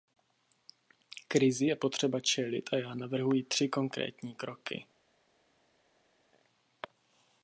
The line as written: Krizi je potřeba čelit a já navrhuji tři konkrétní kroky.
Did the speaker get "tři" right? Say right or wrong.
right